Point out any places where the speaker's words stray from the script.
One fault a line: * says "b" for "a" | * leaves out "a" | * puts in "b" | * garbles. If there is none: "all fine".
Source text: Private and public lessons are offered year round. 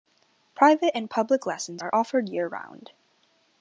all fine